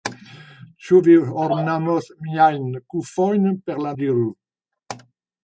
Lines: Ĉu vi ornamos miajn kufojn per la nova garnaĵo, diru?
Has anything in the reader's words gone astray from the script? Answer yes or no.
yes